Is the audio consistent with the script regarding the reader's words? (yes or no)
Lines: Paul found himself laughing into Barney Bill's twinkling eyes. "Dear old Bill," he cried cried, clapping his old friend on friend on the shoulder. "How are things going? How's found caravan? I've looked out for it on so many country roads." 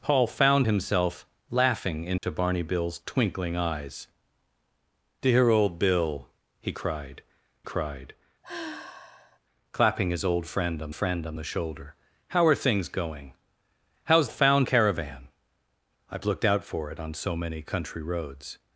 yes